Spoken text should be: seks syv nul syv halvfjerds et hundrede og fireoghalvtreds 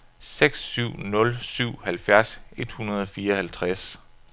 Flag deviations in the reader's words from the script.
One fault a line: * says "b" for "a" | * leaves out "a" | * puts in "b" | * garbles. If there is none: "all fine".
all fine